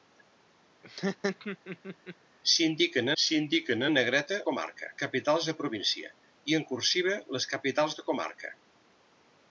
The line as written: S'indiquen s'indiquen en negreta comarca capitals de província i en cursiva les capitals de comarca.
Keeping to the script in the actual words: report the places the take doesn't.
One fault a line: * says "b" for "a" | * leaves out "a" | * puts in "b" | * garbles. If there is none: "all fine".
all fine